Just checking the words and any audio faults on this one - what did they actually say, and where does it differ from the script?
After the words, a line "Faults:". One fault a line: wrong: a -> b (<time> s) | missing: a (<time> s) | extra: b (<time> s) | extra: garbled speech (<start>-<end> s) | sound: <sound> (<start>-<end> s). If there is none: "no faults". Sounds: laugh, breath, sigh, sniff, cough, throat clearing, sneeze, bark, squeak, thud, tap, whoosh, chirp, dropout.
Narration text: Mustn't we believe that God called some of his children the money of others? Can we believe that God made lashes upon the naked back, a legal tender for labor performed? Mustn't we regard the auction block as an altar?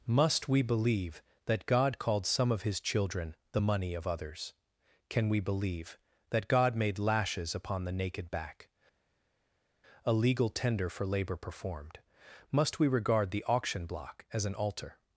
Must we believe that God called some of his children the money of others? Can we believe that God made lashes upon the naked back, a legal tender for labor performed? Must we regard the auction block as an altar?
Faults:
wrong: Mustn't -> Must (0.1 s)
wrong: Mustn't -> Must (12.5 s)